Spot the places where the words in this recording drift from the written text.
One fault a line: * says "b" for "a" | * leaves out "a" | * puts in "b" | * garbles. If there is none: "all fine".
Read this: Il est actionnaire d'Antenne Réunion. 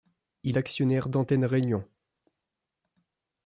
* leaves out "est"